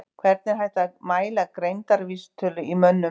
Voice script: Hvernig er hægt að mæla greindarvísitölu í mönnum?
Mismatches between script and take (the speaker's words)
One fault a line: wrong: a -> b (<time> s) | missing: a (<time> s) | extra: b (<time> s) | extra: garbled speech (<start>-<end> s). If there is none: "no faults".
no faults